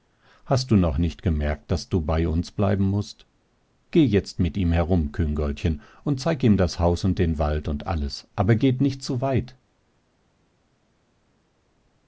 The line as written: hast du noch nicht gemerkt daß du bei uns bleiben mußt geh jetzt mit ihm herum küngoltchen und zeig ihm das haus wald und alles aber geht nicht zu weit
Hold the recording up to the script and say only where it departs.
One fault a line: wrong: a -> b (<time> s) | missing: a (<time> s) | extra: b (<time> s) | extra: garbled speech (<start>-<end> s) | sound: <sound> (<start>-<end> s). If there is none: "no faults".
extra: und den (7.0 s)